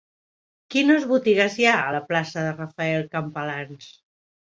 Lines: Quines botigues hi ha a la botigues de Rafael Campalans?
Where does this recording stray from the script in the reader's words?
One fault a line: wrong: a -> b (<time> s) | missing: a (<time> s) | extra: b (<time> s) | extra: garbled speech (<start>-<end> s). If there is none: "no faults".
wrong: botigues -> plaça (2.1 s)